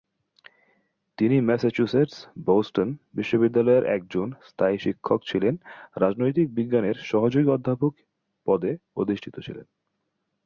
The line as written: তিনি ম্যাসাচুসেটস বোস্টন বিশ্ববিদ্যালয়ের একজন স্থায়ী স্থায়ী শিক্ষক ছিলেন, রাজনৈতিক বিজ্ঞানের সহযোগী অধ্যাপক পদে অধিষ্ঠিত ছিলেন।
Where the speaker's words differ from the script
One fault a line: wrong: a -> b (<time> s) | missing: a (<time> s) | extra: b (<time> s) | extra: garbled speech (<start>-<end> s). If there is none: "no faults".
missing: স্থায়ী (4.8 s)